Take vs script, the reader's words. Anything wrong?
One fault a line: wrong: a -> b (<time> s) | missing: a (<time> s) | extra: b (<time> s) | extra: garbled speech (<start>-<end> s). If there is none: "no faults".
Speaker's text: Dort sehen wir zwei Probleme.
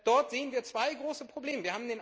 extra: große (0.9 s)